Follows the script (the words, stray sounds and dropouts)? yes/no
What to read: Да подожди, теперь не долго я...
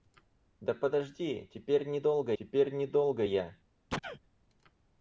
no